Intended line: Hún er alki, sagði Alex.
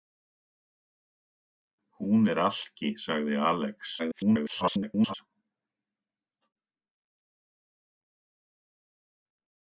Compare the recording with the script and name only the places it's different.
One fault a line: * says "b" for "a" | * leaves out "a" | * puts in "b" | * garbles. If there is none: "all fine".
* garbles